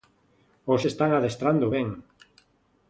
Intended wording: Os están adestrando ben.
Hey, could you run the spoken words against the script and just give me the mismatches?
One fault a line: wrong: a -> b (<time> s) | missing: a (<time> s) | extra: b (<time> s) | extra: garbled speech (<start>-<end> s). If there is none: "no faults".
no faults